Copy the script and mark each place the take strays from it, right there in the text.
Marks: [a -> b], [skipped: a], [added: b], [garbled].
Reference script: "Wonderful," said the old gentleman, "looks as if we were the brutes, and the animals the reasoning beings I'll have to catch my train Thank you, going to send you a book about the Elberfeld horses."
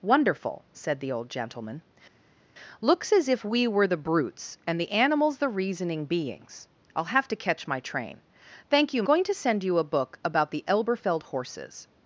"Wonderful," said the old gentleman, "looks as if we were the brutes, and the animals the reasoning beings I'll have to catch my train Thank you, going to send you a book about the Elberfeld horses."